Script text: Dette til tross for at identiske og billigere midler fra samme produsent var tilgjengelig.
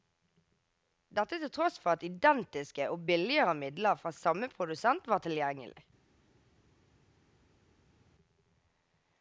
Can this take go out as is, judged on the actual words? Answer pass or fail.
pass